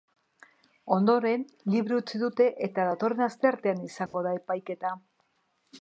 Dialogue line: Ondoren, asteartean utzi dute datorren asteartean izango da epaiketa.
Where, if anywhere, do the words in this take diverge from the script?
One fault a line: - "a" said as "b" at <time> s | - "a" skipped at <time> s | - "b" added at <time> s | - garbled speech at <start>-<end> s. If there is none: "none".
- "asteartean" said as "libre" at 1.8 s
- "eta" added at 2.7 s